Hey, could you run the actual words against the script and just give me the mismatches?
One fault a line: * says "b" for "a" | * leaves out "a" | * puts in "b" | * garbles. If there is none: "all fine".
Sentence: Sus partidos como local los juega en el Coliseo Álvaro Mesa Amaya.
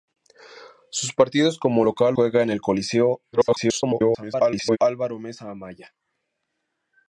* leaves out "los"
* garbles